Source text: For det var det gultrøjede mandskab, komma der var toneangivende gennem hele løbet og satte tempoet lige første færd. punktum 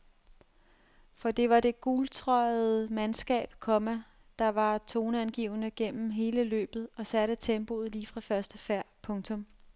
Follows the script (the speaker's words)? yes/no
no